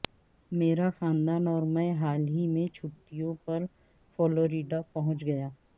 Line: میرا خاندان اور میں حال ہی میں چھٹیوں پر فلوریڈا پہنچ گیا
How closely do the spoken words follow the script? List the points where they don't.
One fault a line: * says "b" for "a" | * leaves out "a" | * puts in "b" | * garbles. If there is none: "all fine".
all fine